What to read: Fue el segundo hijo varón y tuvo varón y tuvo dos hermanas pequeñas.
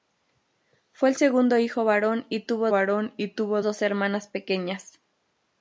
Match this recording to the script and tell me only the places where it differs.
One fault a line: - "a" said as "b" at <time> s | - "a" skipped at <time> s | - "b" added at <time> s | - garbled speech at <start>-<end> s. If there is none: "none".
none